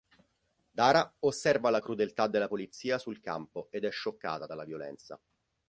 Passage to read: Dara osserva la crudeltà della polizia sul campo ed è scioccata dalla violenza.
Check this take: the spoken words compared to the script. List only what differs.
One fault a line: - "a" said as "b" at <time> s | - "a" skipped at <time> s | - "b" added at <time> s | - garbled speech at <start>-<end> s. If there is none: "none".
none